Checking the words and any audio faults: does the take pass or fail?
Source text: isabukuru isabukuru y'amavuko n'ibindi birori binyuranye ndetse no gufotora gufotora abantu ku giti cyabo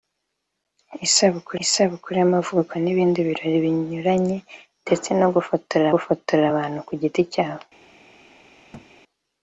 fail